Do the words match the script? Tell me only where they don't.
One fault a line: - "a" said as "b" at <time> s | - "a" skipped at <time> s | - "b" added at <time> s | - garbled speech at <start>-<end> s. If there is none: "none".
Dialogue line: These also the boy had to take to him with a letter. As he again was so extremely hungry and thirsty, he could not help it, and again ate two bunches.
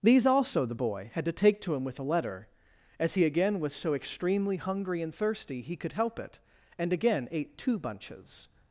- "not" skipped at 5.9 s